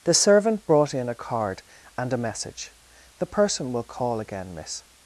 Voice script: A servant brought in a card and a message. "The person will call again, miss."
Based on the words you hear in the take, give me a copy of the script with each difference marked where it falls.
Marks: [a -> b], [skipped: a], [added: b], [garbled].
[A -> The] servant brought in a card and a message. "The person will call again, miss."